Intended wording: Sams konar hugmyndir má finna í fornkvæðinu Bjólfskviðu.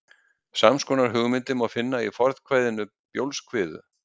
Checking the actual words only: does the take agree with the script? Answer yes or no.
yes